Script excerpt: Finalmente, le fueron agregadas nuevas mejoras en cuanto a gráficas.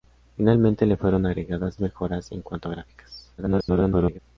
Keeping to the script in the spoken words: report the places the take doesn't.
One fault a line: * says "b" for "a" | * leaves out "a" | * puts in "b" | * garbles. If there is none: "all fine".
* leaves out "nuevas"
* garbles